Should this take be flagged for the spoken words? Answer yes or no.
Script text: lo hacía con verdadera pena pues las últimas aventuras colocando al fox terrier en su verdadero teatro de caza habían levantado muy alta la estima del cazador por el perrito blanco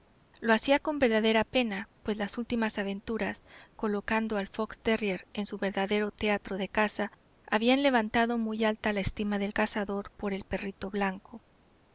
no